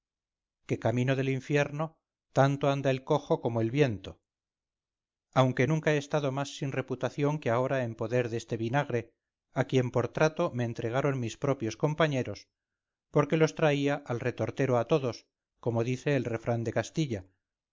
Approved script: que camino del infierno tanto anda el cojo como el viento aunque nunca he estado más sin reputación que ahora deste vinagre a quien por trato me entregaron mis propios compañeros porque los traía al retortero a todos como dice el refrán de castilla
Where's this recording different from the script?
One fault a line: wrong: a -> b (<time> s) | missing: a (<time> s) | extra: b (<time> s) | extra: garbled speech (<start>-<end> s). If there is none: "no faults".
extra: en poder (7.8 s)